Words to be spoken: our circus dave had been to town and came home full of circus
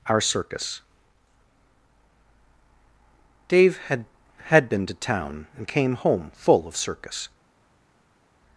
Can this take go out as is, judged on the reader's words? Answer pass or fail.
fail